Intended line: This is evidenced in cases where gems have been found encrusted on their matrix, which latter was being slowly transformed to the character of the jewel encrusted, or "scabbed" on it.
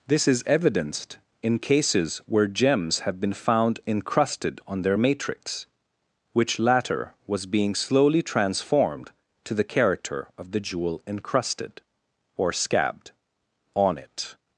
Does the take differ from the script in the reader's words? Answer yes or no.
no